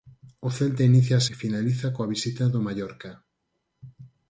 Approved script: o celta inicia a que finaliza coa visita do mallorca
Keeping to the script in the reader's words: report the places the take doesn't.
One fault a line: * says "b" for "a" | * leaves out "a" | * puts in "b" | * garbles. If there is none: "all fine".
all fine